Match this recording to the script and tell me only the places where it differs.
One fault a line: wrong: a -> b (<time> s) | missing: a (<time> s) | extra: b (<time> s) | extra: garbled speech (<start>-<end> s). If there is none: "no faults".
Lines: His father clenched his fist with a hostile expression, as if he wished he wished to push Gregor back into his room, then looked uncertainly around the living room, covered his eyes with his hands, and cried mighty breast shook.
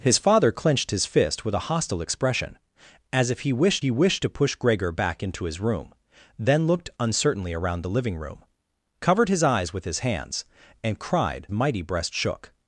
no faults